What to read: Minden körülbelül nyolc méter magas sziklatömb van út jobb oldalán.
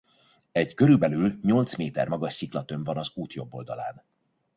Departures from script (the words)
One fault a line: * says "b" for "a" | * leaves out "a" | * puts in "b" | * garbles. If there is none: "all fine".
* says "Egy" for "Minden"
* puts in "az"